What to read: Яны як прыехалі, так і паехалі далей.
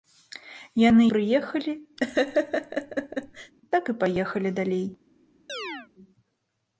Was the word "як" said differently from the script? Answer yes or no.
yes